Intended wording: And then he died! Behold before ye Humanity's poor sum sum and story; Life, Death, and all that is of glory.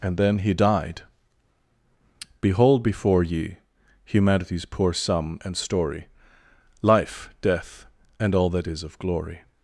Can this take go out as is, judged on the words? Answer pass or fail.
fail